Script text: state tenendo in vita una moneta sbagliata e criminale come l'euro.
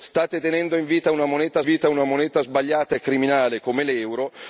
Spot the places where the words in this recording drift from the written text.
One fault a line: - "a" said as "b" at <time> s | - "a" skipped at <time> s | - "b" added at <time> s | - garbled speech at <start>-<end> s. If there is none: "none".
- "vita una moneta" added at 1.6 s